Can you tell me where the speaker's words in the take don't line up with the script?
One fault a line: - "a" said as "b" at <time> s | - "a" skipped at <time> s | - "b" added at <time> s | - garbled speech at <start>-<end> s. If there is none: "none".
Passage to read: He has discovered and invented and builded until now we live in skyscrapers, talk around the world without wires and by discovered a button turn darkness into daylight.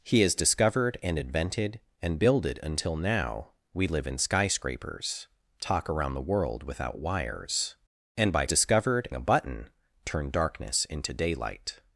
none